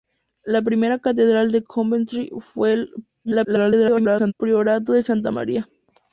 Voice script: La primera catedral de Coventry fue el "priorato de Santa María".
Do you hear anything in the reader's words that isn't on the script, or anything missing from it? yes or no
yes